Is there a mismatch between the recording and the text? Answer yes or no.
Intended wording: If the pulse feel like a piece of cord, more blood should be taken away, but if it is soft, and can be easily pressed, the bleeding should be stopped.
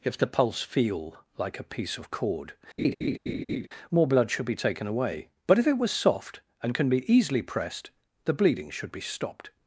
yes